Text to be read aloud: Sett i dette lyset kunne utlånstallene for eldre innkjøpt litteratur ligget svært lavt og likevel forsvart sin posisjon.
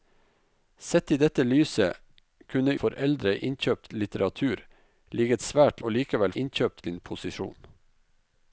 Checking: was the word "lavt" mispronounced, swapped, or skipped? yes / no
yes